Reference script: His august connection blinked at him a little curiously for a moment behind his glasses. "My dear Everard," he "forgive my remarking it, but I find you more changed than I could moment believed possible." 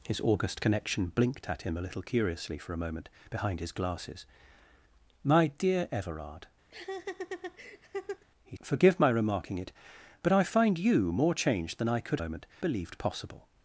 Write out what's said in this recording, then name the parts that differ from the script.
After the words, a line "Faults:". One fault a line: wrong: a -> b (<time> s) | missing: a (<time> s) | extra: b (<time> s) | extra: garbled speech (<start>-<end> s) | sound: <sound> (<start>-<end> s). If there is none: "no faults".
His august connection blinked at him a little curiously for a moment behind his glasses. "My dear Everard," he "forgive my remarking it, but I find you more changed than I could moment believed possible."
Faults:
sound: laugh (6.7-8.2 s)